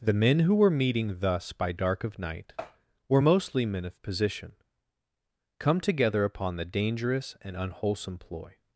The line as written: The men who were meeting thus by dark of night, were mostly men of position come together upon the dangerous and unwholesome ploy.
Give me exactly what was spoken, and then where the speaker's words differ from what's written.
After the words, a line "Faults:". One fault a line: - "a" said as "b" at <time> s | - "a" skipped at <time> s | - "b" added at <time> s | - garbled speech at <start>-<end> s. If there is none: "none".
The men who were meeting thus by dark of night, were mostly men of position come together upon the dangerous and unwholesome ploy.
Faults:
none